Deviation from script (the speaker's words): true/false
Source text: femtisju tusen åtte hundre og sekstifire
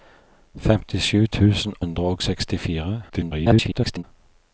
true